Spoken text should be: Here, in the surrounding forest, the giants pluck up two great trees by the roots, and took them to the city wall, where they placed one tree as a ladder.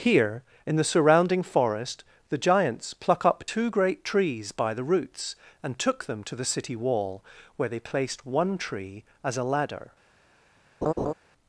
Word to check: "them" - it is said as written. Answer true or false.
true